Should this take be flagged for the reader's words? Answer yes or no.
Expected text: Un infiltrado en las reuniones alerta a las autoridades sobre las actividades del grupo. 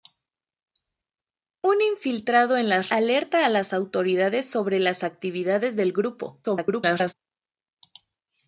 yes